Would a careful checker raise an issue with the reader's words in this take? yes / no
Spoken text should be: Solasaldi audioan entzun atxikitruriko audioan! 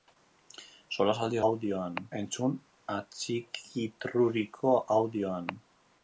no